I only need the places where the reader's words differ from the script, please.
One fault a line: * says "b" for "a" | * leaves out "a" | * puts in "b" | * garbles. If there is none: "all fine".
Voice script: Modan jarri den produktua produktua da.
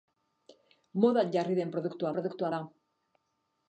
all fine